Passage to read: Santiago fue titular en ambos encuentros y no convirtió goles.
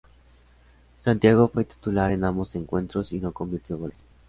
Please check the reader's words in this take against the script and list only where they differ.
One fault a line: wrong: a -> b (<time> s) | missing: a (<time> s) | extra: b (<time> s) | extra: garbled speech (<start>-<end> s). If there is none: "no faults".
no faults